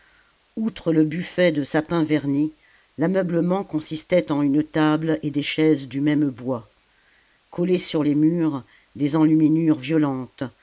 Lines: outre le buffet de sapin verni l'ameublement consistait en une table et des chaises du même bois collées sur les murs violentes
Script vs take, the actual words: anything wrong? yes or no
yes